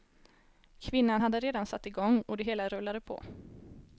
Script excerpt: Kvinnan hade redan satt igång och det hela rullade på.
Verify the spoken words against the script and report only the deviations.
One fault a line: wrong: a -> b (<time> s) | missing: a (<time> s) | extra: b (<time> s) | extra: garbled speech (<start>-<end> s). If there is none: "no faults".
no faults